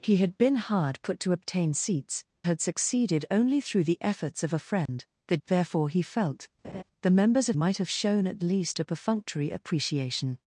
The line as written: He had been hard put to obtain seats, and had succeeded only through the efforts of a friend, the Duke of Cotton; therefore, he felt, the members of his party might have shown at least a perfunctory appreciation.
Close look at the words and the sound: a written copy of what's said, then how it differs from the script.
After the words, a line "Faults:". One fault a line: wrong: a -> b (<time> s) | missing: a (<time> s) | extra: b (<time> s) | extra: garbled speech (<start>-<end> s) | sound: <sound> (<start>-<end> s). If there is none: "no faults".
He had been hard put to obtain seats, had succeeded only through the efforts of a friend, the; Therefore, he felt, the members of might have shown at least a perfunctory appreciation.
Faults:
missing: and (2.2 s)
sound: dropout (4.9-4.9 s)
missing: Duke of Cotton (5.4 s)
sound: laugh (6.6-6.8 s)
missing: his party (7.6 s)